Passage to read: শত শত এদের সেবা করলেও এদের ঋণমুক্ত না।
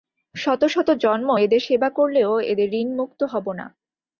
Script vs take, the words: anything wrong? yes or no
yes